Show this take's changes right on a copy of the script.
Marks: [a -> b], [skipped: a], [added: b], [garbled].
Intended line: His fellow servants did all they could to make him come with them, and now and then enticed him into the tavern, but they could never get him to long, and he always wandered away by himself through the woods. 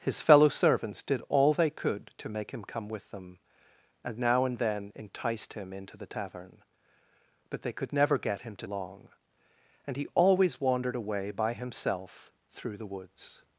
His fellow servants did all they could to make him come with them, and now and then enticed him into the tavern, but they could never get him to long, and he always wandered away by himself through the woods.